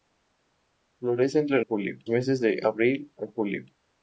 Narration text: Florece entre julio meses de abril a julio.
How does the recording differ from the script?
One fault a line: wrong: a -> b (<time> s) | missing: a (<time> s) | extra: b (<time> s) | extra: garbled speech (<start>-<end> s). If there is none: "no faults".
no faults